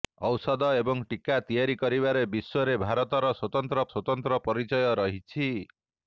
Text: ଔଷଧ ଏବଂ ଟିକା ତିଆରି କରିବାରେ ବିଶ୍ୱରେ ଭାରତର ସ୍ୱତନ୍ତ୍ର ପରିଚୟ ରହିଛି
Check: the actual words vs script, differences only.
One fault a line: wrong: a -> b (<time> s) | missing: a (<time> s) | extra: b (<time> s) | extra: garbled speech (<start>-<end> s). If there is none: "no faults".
extra: ସ୍ୱତନ୍ତ୍ର (3.9 s)